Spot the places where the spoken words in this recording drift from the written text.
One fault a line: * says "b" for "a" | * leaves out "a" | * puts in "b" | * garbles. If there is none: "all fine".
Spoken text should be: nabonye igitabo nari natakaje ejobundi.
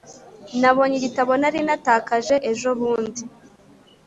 all fine